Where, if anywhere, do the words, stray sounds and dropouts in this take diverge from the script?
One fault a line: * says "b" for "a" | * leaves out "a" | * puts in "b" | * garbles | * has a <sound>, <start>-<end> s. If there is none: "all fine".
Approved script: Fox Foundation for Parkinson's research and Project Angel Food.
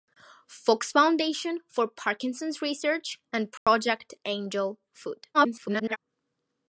* has a dropout, 3.6-3.7 s
* garbles